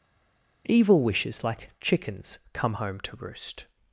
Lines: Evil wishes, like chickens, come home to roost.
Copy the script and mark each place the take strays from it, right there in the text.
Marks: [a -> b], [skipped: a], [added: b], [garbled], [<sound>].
Evil wishes, like chickens, come home to roost.